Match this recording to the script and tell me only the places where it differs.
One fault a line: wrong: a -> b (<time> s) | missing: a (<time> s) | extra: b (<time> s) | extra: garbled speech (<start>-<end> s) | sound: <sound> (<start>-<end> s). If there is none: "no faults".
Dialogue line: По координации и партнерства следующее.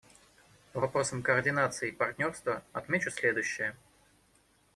extra: вопросам (0.8 s)
extra: отмечу (2.7 s)